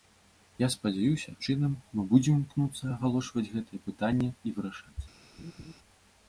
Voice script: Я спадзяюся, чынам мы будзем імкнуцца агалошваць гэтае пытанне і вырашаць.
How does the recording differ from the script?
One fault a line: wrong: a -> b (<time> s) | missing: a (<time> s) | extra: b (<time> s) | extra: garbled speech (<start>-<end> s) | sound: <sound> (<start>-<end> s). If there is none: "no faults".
sound: laugh (5.4-5.7 s)